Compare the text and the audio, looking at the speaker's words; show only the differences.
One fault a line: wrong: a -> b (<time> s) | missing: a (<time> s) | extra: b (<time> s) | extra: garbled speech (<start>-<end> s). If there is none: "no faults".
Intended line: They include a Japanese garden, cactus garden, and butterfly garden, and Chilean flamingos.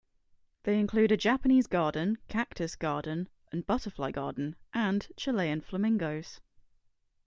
no faults